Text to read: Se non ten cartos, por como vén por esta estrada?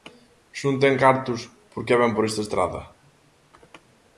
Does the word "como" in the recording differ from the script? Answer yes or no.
yes